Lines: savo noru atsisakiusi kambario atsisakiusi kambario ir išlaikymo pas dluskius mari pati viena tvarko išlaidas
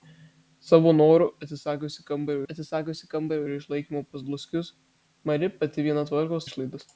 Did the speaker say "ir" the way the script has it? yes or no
yes